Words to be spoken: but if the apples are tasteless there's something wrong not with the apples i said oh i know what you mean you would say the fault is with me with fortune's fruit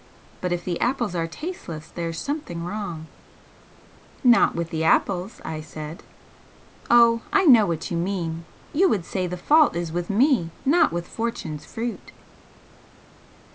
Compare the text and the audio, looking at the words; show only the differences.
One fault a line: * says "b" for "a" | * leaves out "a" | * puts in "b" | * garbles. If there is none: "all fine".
* puts in "not"